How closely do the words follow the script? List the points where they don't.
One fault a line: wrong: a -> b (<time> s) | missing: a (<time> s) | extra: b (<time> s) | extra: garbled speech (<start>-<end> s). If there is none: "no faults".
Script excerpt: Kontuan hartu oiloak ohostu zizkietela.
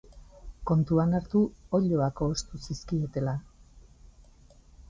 no faults